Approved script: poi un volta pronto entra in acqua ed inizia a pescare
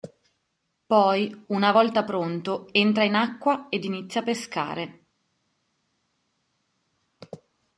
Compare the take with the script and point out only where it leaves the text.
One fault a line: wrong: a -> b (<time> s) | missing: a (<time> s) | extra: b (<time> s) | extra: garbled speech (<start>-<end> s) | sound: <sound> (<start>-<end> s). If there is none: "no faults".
wrong: un -> una (1.5 s)